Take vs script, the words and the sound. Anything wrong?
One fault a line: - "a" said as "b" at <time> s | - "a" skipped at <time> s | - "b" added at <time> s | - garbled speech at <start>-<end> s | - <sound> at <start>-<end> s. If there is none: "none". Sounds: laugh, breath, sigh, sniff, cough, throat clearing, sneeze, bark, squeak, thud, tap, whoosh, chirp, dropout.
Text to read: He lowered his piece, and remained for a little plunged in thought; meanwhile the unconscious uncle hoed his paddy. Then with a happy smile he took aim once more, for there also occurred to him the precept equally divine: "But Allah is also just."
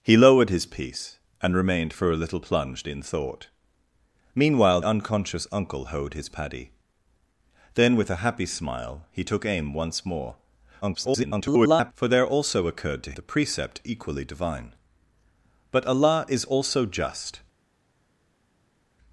- "the" skipped at 4.8 s
- garbled speech at 10.8-11.9 s
- "him" skipped at 13.1 s